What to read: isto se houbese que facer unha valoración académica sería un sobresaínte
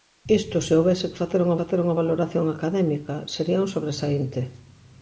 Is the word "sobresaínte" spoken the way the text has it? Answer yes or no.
yes